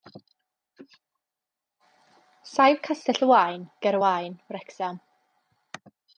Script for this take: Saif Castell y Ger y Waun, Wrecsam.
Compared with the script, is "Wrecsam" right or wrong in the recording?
right